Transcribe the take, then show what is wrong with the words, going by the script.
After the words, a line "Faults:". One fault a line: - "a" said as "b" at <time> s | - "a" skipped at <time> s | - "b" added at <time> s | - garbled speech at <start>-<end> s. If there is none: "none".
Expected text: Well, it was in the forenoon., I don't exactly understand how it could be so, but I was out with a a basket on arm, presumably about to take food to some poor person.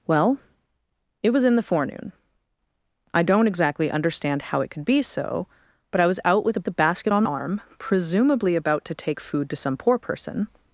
Well, it was in the forenoon., I don't exactly understand how it could be so, but I was out with a a basket on arm, presumably about to take food to some poor person.
Faults:
none